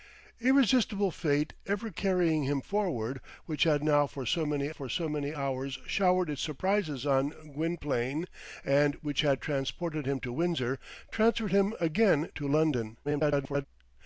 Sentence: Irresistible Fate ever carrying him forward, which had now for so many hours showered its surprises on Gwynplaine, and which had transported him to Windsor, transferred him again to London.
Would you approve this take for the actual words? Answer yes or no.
no